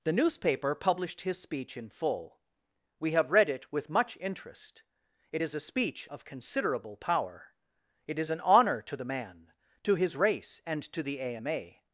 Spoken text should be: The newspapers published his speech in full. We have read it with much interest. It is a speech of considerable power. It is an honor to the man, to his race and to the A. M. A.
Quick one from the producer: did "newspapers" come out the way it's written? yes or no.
no